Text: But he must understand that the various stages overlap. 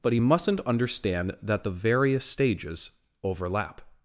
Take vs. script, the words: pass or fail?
fail